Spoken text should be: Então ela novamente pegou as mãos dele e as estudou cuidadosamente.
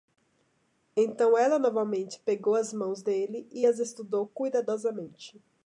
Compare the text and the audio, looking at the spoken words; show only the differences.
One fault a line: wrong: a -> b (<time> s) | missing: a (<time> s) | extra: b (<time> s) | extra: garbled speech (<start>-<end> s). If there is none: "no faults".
no faults